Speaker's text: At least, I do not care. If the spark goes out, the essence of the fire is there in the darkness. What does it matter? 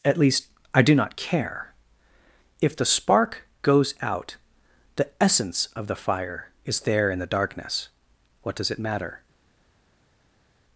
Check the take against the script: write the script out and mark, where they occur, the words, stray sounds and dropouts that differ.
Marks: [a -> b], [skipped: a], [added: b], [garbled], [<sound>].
At least, I do not care. If the spark goes out, the essence of the fire is there in the darkness. What does it matter?